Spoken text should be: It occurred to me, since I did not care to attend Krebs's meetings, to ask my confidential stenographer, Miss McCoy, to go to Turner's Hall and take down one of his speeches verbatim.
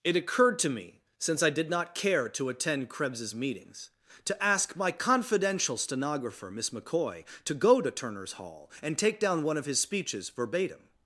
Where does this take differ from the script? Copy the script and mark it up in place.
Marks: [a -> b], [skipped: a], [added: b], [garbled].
It occurred to me, since I did not care to attend Krebs's meetings, to ask my confidential stenographer, Miss McCoy, to go to Turner's Hall and take down one of his speeches verbatim.